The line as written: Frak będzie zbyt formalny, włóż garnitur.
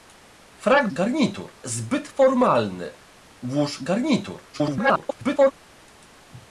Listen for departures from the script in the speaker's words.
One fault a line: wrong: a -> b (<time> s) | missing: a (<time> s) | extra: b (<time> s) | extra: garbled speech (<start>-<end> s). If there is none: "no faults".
wrong: będzie -> garnitur (0.9 s)
extra: garbled speech (4.5-5.5 s)